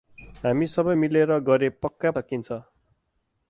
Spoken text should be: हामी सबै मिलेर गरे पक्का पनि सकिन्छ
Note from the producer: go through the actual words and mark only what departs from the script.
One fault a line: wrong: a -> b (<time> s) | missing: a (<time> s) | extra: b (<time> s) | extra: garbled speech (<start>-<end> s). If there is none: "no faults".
missing: पनि (2.1 s)